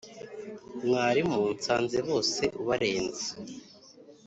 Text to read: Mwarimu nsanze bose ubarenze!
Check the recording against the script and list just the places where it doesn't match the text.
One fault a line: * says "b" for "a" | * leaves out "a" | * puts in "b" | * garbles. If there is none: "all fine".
all fine